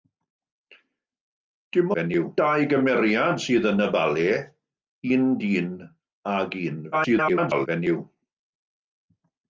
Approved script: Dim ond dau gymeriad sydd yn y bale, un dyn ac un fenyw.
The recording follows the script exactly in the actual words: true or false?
false